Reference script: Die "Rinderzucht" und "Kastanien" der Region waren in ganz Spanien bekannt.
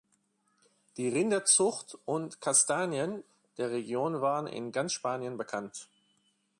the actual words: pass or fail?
pass